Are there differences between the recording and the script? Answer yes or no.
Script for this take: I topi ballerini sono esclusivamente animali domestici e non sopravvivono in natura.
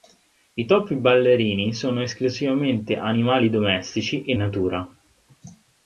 yes